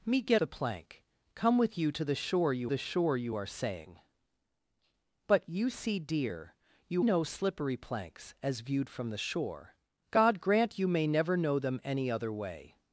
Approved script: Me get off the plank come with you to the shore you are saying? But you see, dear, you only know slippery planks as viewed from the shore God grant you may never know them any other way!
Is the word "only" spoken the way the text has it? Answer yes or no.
no